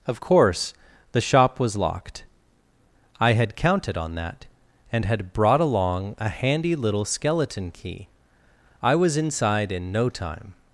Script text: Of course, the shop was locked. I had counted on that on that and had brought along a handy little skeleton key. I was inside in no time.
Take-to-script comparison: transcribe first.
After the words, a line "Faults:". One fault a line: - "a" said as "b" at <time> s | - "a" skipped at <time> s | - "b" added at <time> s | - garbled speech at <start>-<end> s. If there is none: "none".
Of course, the shop was locked. I had counted on that and had brought along a handy little skeleton key. I was inside in no time.
Faults:
- "on that" skipped at 4.4 s